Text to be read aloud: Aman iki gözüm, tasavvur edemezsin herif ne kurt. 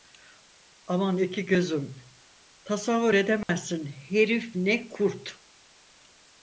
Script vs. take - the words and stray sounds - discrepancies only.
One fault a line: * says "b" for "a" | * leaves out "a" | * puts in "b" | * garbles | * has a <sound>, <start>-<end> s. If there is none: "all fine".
* has a dropout, 3.4-3.5 s